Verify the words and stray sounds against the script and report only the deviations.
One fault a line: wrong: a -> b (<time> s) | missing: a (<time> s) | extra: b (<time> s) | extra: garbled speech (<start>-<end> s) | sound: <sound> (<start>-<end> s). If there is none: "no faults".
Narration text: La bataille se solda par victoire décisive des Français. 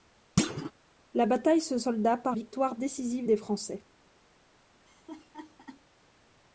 sound: thud (0.4-0.7 s)
sound: laugh (4.8-5.8 s)